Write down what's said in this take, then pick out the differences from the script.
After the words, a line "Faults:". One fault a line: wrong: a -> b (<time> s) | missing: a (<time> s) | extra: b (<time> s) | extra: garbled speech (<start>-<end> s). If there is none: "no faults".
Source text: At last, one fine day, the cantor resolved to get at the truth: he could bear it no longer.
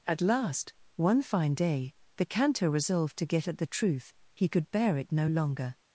At last, one fine day, the cantor resolved to get at the truth: he could bear it no longer.
Faults:
no faults